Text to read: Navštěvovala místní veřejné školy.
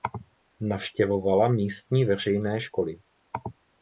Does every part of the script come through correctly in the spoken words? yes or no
yes